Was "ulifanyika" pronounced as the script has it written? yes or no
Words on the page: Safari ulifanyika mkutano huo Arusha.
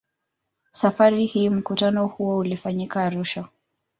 no